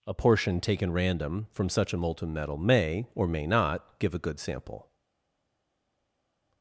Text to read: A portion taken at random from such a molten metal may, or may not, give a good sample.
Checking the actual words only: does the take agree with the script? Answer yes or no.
no